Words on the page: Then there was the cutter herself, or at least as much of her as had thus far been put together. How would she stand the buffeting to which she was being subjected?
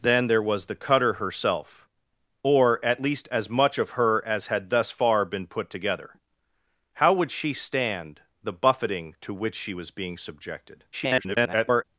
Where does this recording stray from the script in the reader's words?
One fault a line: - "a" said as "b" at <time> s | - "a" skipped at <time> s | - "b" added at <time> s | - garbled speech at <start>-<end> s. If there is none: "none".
- garbled speech at 10.9-11.8 s